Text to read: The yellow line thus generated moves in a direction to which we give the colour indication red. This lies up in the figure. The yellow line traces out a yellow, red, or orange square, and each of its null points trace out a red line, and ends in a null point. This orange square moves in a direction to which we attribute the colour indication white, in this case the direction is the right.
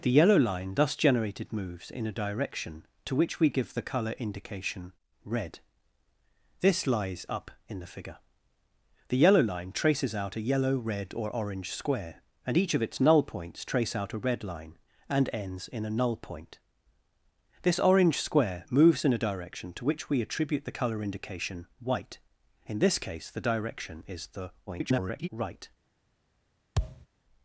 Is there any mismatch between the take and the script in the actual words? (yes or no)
yes